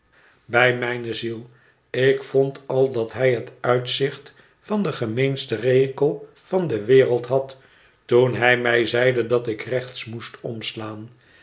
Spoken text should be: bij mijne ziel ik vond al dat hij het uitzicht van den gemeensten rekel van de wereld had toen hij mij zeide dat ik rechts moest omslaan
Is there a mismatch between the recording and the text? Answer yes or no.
no